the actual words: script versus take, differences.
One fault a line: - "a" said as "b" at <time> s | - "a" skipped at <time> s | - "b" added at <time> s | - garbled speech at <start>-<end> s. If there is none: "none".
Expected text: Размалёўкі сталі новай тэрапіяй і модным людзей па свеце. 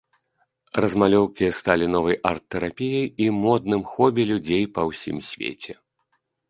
- "арт" added at 2.3 s
- "хобі" added at 3.9 s
- "ўсім" added at 4.9 s